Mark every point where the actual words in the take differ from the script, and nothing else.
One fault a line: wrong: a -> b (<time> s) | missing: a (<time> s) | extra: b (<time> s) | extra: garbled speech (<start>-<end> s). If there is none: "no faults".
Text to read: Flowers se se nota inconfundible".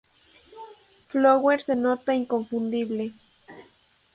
missing: se (1.7 s)